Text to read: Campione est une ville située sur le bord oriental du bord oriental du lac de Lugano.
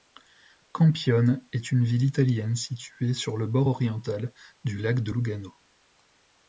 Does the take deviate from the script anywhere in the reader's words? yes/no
yes